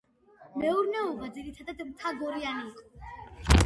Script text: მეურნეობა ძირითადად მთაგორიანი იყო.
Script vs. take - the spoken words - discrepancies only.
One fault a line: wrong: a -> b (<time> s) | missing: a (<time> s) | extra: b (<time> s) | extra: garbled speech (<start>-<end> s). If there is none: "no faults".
no faults